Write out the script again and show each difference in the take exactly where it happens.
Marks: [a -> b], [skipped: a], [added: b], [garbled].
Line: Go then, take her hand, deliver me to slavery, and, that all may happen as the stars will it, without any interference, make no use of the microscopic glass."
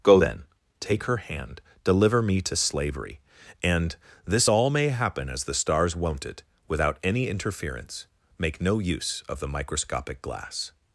Go then, take her hand, deliver me to slavery, and, [that -> this] all may happen as the stars [will -> won't] it, without any interference, make no use of the microscopic glass."